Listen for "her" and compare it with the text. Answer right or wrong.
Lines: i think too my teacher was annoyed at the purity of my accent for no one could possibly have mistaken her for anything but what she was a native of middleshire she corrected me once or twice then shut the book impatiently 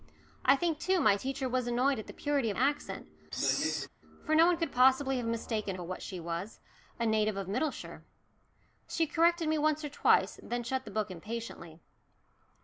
wrong